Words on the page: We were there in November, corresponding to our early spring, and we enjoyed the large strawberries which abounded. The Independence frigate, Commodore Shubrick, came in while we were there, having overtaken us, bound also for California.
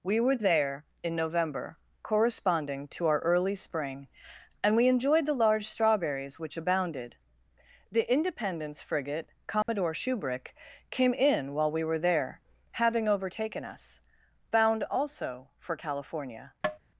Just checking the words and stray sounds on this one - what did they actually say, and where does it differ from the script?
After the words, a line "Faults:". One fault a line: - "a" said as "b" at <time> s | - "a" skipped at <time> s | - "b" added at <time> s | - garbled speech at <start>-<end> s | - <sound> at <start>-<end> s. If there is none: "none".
We were there in November, corresponding to our early spring, and we enjoyed the large strawberries which abounded. The Independence frigate, Commodore Shubrick, came in while we were there, having overtaken us, bound also for California.
Faults:
- dropout at 9.6-9.7 s
- tap at 16.6-16.8 s